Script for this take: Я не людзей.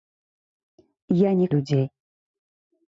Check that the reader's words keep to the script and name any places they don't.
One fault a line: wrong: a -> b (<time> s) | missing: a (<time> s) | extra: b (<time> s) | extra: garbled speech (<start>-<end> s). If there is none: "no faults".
no faults